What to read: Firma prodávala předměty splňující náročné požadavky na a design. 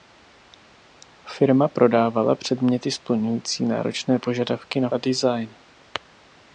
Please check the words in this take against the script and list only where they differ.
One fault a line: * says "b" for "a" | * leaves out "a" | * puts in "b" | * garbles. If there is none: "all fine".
all fine